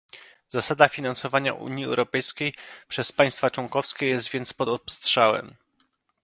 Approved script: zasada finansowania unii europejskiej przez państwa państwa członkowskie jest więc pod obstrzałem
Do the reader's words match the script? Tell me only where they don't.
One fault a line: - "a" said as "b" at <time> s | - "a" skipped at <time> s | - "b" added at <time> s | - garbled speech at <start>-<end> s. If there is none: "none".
- "państwa" skipped at 3.5 s